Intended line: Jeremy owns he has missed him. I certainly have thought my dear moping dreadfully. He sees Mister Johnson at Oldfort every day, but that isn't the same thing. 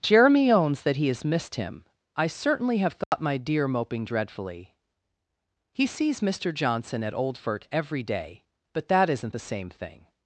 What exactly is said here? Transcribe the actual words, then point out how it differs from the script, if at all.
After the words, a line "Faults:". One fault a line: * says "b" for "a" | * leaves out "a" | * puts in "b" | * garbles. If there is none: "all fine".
Jeremy owns that he has missed him. I certainly have thought my dear moping dreadfully. He sees Mister Johnson at Oldfort every day, but that isn't the same thing.
Faults:
* puts in "that"